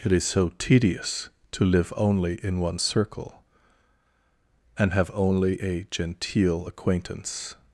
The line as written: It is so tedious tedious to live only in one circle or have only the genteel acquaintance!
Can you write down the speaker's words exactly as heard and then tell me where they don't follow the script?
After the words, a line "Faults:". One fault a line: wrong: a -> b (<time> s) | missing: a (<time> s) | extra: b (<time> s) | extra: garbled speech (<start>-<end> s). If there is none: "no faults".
It is so tedious to live only in one circle and have only a genteel acquaintance!
Faults:
missing: tedious (1.3 s)
wrong: or -> and (4.8 s)
wrong: the -> a (5.6 s)